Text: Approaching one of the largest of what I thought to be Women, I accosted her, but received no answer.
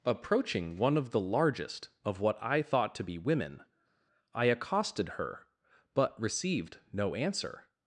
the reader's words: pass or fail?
pass